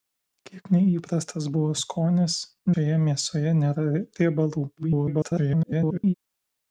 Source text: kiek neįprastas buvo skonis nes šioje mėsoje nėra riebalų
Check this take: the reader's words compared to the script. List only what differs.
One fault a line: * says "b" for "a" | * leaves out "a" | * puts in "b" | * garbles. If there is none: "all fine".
* leaves out "nes"
* garbles